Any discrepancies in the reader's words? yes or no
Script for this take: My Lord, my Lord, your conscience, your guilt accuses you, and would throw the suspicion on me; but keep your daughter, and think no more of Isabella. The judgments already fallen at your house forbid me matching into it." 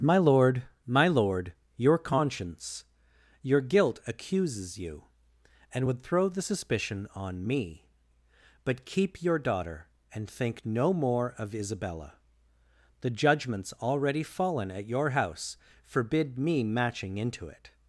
no